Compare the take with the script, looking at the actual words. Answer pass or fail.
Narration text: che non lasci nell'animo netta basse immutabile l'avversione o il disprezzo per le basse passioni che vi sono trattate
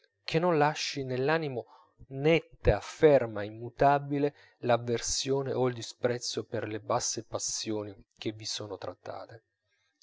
fail